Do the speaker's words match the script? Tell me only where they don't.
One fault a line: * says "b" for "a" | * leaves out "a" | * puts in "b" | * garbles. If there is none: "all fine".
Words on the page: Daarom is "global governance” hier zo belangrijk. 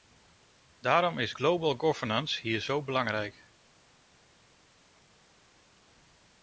all fine